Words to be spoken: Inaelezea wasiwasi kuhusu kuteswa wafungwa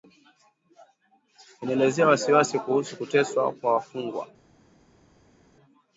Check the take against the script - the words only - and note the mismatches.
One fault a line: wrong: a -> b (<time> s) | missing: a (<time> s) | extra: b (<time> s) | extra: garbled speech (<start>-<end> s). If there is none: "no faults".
extra: kwa (3.5 s)